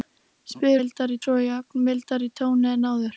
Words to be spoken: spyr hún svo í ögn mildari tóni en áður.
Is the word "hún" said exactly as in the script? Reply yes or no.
no